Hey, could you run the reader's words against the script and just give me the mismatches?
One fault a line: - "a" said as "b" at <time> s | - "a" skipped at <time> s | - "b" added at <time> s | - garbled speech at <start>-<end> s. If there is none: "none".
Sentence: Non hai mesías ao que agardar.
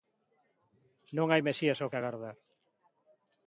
none